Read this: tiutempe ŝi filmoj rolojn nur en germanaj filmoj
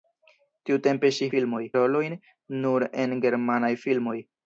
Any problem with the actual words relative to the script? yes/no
no